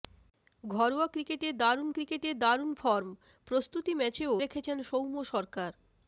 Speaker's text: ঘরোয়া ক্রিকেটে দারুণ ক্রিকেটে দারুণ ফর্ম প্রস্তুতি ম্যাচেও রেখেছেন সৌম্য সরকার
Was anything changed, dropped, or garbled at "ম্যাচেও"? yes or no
no